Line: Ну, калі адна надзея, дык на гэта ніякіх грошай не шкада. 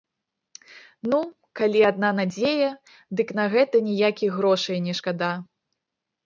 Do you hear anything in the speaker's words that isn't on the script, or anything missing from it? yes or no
no